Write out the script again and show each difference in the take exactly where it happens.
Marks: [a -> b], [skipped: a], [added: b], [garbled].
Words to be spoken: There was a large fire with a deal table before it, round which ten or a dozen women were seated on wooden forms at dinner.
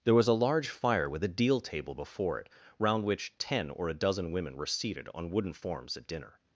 There was a large fire with a deal table before it, round which ten or a dozen women were seated on wooden forms at dinner.